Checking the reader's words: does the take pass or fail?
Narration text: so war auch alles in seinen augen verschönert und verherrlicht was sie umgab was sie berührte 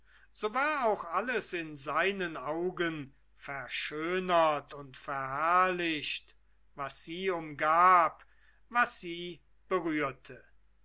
pass